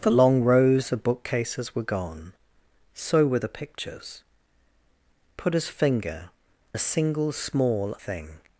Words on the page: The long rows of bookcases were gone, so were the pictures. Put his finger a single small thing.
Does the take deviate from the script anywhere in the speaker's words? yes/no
no